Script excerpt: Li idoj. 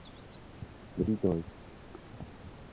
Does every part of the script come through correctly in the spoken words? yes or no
yes